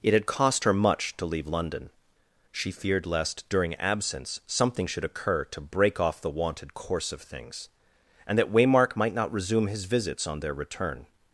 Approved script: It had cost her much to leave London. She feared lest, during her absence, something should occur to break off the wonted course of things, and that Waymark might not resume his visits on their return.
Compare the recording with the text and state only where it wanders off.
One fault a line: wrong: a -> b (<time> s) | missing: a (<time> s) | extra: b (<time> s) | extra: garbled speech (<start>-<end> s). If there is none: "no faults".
missing: her (3.7 s)